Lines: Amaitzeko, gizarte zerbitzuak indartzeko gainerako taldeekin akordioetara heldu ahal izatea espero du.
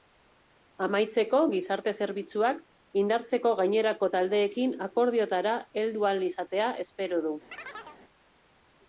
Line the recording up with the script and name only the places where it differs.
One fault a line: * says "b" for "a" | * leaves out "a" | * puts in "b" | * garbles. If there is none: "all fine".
all fine